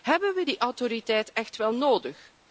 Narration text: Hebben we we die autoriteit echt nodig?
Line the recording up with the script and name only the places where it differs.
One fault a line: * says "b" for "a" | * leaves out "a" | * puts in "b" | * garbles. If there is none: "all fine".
* leaves out "we"
* puts in "wel"